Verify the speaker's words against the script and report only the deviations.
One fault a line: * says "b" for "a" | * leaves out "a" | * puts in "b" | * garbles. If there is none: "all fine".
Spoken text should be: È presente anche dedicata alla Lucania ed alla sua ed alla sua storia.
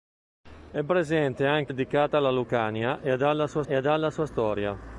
all fine